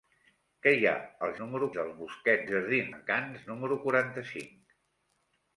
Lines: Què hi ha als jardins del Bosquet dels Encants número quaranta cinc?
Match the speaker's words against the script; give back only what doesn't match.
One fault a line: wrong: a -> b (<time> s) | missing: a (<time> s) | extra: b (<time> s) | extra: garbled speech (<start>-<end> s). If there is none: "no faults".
wrong: jardins -> número (1.4 s)
wrong: dels -> jardins (2.5 s)